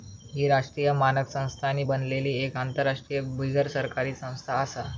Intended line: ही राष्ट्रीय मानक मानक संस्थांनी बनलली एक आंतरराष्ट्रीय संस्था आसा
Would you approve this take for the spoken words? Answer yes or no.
no